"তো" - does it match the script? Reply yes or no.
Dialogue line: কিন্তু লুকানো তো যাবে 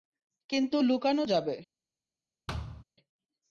no